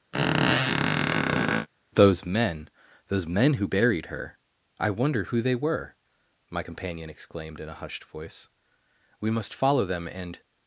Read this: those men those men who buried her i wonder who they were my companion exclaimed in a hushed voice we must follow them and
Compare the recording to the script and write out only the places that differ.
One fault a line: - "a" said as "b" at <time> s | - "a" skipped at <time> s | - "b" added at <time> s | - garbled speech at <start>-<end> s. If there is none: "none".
none